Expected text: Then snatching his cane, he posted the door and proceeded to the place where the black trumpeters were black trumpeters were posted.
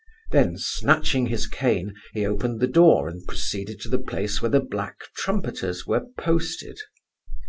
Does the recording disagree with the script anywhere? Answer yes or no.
yes